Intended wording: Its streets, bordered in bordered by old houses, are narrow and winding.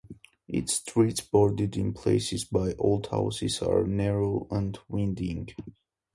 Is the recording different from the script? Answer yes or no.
yes